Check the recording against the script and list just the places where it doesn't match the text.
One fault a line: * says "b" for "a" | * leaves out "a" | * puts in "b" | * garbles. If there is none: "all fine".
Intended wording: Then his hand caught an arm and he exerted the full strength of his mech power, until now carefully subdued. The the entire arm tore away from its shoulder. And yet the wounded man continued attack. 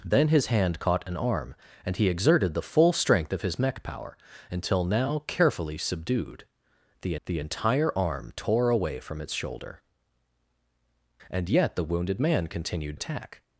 all fine